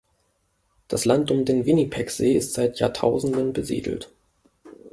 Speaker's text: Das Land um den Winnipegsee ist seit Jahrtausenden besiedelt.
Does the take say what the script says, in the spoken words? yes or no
yes